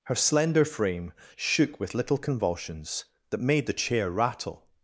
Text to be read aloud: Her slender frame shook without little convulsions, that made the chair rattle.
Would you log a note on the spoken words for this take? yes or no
yes